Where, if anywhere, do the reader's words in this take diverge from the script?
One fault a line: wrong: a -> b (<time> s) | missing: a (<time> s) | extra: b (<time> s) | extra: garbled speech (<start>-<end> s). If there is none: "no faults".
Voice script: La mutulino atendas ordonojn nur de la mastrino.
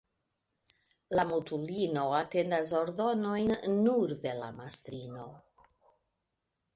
no faults